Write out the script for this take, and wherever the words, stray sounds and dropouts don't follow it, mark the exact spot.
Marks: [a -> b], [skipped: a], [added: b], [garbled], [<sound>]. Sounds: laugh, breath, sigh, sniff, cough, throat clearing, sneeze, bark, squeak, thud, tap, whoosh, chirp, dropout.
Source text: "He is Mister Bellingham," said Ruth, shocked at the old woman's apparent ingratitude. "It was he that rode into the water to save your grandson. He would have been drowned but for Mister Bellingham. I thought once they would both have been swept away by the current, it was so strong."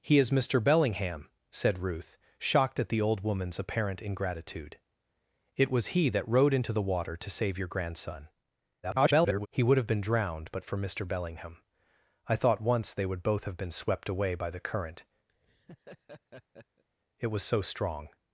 "He is Mister Bellingham," said Ruth, shocked at the old woman's apparent ingratitude. "It was he that rode into the water to save your grandson. [garbled] He would have been drowned but for Mister Bellingham. I thought once they would both have been swept away by the current, [laugh] it was so strong."